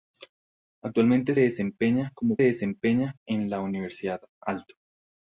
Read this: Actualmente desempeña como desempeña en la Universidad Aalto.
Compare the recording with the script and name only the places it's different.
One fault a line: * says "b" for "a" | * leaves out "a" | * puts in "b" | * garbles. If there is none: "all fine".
all fine